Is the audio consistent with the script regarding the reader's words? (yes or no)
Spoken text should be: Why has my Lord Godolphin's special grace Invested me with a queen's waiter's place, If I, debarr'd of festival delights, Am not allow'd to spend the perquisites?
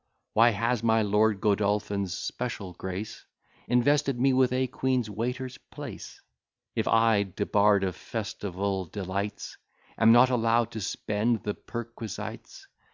yes